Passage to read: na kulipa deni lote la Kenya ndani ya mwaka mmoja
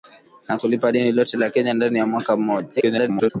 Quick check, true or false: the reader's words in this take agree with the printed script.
false